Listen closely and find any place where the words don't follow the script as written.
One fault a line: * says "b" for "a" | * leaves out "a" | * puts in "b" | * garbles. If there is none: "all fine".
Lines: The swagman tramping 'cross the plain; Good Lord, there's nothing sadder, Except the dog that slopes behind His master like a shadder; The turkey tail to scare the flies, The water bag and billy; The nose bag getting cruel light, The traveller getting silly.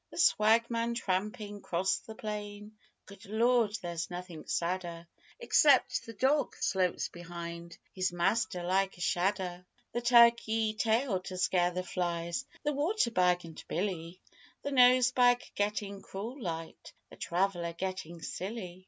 * leaves out "that"